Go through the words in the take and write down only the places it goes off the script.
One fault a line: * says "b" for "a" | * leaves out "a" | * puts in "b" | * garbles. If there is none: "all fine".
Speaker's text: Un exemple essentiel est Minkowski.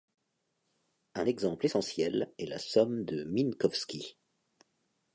* puts in "la somme de"